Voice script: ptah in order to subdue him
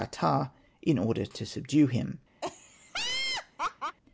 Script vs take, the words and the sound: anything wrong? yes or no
yes